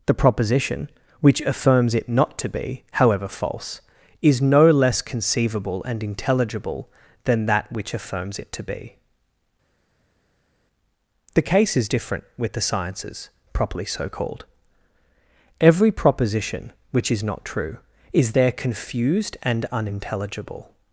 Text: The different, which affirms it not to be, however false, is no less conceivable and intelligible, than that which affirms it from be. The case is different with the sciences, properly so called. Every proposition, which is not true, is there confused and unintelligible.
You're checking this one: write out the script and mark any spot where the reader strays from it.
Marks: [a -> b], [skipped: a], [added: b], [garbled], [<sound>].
The [different, -> proposition] which affirms it not to be, however false, is no less conceivable and intelligible, than that which affirms it [from -> to] be. The case is different with the sciences, properly so called. Every proposition, which is not true, is there confused and unintelligible.